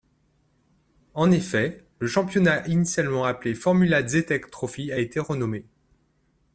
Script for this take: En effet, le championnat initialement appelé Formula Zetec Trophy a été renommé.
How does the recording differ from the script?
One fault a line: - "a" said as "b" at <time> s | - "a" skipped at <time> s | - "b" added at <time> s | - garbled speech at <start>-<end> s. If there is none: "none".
none